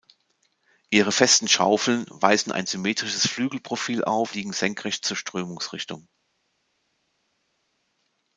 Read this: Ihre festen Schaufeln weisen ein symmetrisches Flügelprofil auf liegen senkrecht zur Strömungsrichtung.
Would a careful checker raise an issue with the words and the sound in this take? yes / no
no